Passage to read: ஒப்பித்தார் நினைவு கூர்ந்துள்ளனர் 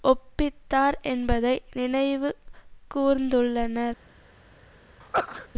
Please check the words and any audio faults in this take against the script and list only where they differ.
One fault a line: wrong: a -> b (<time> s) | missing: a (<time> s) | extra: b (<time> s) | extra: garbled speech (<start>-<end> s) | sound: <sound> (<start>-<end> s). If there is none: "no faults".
extra: என்பதை (1.0 s)
sound: sneeze (5.0-5.5 s)